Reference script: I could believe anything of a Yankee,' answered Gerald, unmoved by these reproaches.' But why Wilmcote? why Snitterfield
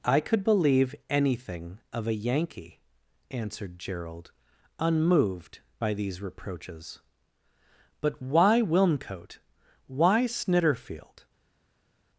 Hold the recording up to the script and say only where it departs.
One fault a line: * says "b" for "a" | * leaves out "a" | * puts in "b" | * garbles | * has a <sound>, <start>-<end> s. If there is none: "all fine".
all fine